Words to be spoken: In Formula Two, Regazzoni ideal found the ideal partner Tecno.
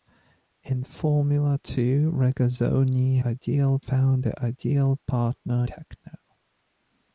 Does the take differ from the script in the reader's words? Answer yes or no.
no